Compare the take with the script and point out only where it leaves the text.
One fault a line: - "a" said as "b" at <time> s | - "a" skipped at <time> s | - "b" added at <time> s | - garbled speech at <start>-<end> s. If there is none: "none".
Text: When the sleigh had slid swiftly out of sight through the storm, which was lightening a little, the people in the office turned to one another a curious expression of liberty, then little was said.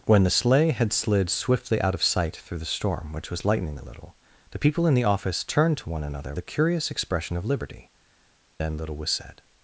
none